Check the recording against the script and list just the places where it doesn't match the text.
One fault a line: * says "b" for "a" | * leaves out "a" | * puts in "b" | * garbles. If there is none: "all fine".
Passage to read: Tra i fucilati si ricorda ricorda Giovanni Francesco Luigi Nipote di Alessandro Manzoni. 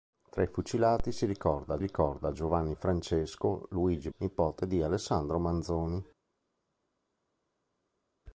all fine